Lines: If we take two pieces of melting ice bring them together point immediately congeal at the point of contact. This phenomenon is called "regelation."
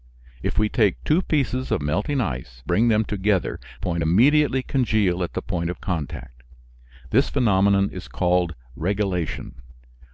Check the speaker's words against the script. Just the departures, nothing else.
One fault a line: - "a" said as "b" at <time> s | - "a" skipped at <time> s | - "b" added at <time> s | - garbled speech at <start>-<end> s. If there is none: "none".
none